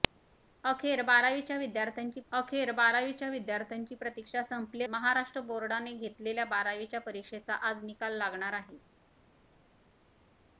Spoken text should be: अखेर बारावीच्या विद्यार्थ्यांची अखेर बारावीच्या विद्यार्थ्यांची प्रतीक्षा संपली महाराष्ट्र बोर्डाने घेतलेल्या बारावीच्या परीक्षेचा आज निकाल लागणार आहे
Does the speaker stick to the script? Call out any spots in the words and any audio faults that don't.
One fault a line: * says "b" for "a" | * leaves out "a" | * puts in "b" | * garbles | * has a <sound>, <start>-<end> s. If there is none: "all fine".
all fine